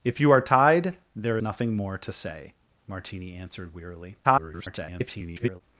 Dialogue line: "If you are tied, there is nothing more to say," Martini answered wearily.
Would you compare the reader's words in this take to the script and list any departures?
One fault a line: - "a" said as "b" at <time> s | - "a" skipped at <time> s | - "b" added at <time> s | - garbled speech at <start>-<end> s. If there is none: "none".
- "is" skipped at 1.4 s
- garbled speech at 4.2-5.6 s